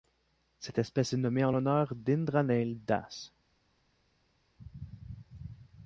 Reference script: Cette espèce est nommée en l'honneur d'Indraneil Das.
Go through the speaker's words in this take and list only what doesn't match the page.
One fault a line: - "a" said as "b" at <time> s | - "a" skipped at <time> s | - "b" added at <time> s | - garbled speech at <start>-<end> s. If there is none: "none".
none